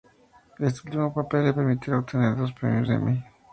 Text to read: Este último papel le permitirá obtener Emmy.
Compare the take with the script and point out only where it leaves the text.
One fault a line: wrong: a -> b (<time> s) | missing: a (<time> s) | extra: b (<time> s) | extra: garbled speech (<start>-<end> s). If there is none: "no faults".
extra: dos premios (2.4 s)